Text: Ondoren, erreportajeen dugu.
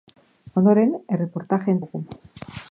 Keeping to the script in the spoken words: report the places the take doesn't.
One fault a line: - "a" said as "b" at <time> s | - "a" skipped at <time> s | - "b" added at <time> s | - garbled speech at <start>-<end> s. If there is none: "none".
none